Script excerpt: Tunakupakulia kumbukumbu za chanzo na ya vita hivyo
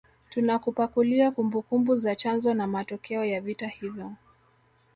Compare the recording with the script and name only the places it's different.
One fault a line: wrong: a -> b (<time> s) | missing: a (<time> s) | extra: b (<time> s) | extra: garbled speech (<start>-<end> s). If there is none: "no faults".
extra: matokeo (2.7 s)